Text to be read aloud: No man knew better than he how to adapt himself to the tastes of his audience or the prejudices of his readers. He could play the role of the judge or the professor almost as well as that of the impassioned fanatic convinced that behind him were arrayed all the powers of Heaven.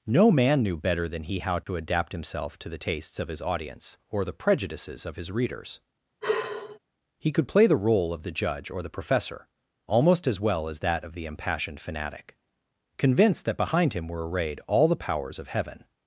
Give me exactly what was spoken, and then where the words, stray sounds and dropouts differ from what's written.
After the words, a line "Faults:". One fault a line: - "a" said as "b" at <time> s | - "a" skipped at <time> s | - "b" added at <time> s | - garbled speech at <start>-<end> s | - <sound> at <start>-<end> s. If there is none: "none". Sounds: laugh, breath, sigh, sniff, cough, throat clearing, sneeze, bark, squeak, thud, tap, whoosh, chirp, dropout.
No man knew better than he how to adapt himself to the tastes of his audience or the prejudices of his readers. He could play the role of the judge or the professor almost as well as that of the impassioned fanatic convinced that behind him were arrayed all the powers of Heaven.
Faults:
- dropout at 1.6-1.7 s
- sigh at 6.2-6.8 s